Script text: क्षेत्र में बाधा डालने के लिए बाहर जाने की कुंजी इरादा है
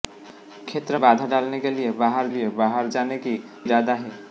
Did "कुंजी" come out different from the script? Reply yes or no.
yes